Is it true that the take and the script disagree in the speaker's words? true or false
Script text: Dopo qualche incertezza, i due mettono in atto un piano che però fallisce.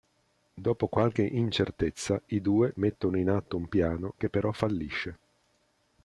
false